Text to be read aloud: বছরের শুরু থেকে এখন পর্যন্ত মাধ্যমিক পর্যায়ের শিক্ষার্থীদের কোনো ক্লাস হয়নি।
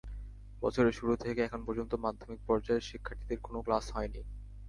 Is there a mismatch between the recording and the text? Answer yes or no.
no